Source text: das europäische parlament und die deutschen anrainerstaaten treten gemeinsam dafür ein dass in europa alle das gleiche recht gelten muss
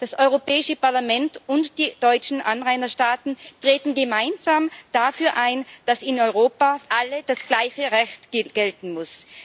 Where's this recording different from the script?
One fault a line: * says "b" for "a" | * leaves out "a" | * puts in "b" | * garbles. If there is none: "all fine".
all fine